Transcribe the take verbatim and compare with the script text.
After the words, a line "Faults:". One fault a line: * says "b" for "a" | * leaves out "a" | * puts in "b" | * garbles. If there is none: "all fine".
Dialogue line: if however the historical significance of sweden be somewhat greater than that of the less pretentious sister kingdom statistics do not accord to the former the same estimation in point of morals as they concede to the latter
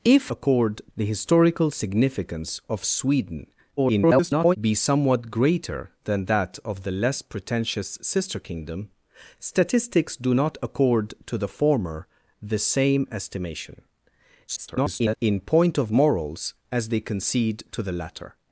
if accord the historical significance of sweden [garbled] be somewhat greater than that of the less pretentious sister kingdom statistics do not accord to the former the same estimation [garbled] in point of morals as they concede to the latter
Faults:
* says "accord" for "however"
* garbles
* garbles